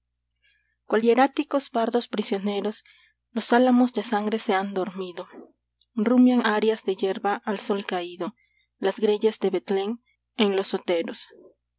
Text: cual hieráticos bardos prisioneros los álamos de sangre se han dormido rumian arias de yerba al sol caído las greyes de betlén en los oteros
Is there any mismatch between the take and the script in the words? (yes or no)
no